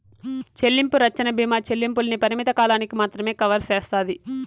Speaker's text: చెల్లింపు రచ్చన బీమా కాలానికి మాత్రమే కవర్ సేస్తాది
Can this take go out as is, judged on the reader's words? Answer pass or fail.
fail